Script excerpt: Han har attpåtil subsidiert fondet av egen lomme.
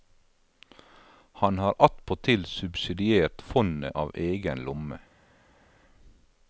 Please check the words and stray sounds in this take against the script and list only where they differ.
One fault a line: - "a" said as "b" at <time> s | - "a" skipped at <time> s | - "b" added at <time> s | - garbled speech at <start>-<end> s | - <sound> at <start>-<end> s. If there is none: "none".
none